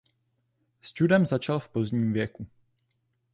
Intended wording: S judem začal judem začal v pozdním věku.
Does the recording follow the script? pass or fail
fail